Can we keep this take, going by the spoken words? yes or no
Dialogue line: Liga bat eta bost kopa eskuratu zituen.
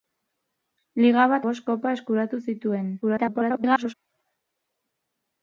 no